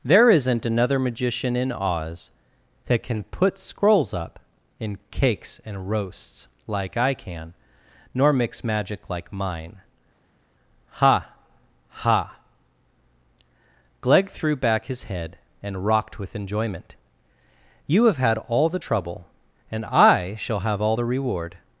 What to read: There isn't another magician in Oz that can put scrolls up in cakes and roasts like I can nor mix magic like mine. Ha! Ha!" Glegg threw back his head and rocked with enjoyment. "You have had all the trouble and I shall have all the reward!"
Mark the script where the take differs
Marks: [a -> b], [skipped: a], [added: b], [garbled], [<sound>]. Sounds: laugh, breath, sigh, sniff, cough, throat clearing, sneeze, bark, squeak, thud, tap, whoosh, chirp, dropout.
There isn't another magician in Oz that can put scrolls up in cakes and roasts like I can nor mix magic like mine. Ha! Ha!" Glegg threw back his head and rocked with enjoyment. "You have had all the trouble and I shall have all the reward!"